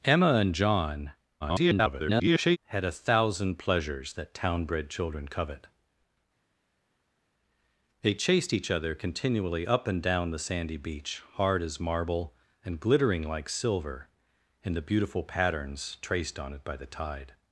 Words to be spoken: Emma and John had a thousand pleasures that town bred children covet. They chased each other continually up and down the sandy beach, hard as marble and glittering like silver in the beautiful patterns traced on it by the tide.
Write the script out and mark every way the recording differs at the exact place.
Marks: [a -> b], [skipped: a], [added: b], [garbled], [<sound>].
Emma and John [garbled] had a thousand pleasures that town bred children covet. They chased each other continually up and down the sandy beach, hard as marble and glittering like silver in the beautiful patterns traced on it by the tide.